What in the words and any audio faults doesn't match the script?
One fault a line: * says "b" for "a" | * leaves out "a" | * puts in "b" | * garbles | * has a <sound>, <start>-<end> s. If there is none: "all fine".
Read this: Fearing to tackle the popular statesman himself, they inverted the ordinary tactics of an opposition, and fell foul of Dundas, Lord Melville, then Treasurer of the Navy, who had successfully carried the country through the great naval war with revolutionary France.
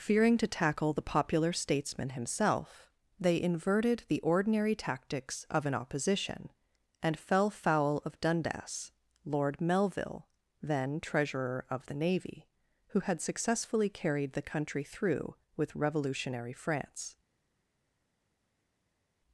* leaves out "the great naval war"